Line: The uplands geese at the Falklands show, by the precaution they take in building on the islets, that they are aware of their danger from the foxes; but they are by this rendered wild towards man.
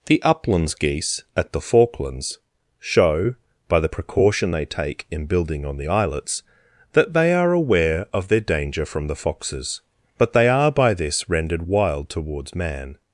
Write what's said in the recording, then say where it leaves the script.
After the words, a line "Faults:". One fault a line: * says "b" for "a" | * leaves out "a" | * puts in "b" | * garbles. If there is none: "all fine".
The uplands geese at the Falklands show, by the precaution they take in building on the islets, that they are aware of their danger from the foxes; but they are by this rendered wild towards man.
Faults:
all fine